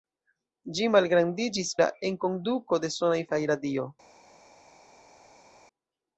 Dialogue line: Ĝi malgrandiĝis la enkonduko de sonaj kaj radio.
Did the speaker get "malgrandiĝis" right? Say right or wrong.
right